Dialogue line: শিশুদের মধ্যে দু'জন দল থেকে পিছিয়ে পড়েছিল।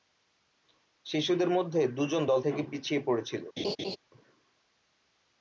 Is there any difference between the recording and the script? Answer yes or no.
no